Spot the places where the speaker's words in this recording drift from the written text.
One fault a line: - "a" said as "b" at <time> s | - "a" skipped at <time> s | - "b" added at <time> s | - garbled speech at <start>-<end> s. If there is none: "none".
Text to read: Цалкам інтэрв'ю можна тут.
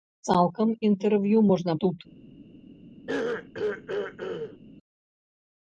none